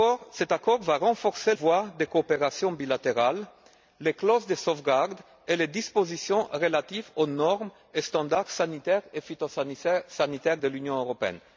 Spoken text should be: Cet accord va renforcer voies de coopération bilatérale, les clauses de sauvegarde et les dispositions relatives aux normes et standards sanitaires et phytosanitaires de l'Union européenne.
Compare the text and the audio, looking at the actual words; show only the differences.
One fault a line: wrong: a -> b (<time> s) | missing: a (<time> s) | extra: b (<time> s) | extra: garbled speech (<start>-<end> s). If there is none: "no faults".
no faults